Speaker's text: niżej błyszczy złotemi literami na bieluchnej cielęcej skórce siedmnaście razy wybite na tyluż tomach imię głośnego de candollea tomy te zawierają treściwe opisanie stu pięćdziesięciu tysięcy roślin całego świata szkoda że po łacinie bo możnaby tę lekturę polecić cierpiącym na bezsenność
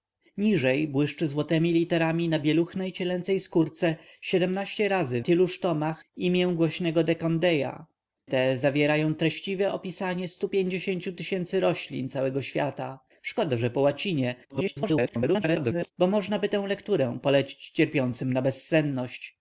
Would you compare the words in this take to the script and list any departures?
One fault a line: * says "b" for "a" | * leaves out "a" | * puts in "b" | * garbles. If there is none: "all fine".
* leaves out "wybite na"
* leaves out "tomy"
* garbles